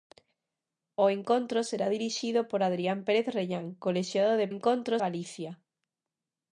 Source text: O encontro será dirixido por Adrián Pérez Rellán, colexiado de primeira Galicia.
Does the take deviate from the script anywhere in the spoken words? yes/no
yes